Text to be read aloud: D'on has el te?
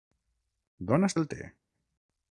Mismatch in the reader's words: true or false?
false